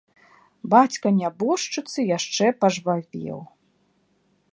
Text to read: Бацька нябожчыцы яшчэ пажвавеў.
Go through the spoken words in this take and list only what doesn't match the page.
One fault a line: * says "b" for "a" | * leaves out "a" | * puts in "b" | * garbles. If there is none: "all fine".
all fine